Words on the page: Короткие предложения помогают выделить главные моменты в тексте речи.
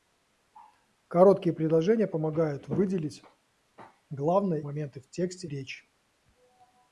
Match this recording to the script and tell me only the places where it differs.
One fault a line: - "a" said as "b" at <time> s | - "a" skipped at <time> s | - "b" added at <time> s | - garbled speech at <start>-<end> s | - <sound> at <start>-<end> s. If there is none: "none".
none